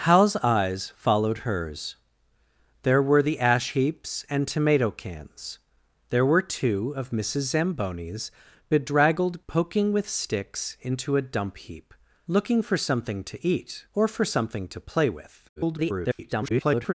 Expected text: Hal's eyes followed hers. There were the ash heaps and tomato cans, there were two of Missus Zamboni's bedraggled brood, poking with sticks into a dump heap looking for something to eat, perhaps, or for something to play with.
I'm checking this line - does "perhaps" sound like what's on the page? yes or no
no